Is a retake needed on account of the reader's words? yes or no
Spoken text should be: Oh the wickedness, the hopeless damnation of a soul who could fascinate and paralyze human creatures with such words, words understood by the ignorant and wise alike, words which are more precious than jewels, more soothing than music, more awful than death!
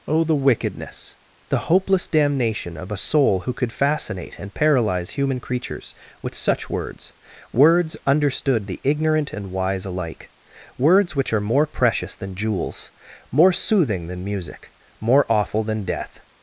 yes